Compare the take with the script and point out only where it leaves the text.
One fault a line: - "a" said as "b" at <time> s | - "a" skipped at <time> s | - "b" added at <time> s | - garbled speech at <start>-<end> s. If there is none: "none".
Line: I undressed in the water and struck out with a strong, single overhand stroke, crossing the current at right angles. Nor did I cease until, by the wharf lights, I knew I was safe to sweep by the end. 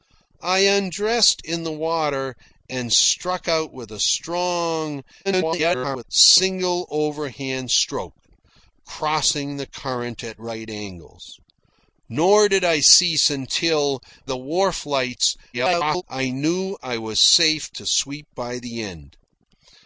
- garbled speech at 5.2-6.0 s
- "by" skipped at 14.0 s
- garbled speech at 15.5-16.0 s